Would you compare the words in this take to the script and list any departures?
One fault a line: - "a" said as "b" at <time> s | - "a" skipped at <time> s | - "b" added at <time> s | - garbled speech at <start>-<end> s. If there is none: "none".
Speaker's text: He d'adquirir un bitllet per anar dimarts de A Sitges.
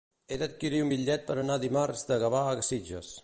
- "Gavà" added at 2.3 s